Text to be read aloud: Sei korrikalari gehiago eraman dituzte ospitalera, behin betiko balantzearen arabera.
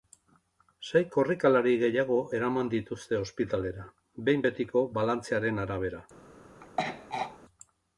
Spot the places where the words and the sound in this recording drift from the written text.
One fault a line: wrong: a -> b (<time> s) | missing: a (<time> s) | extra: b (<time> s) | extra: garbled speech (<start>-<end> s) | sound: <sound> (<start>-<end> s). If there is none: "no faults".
sound: throat clearing (6.6-7.4 s)